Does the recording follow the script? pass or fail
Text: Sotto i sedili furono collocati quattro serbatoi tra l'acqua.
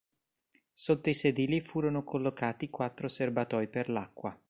fail